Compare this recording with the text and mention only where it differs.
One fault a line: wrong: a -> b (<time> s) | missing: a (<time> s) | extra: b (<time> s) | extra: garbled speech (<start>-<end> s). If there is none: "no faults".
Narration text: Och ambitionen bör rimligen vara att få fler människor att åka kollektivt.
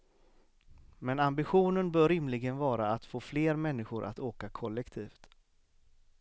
wrong: Och -> Men (1.0 s)